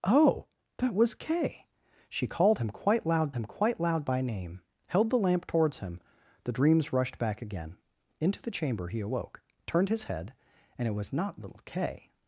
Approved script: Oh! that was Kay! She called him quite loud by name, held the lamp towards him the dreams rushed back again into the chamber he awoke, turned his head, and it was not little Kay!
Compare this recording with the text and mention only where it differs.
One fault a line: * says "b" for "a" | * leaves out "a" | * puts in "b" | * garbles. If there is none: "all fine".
* puts in "him quite loud"